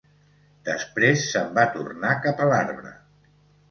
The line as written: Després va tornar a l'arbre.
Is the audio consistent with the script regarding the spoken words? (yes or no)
no